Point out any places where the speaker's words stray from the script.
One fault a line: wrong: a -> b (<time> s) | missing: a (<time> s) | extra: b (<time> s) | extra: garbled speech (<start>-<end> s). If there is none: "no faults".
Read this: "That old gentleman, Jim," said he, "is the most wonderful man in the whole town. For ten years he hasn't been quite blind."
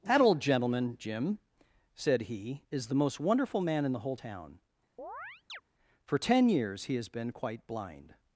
wrong: hasn't -> has (6.9 s)